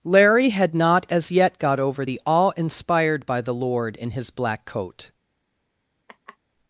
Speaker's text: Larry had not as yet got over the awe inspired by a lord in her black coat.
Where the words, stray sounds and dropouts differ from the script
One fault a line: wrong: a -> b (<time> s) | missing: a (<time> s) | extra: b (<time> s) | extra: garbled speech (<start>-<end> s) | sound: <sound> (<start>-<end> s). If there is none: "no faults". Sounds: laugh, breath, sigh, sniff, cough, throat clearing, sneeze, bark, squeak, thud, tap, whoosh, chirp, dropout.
wrong: a -> the (3.4 s)
wrong: her -> his (4.1 s)
sound: laugh (6.1-6.4 s)